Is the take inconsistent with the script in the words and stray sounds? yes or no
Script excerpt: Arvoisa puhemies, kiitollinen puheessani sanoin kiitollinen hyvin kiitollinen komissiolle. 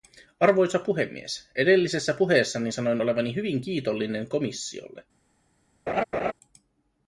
yes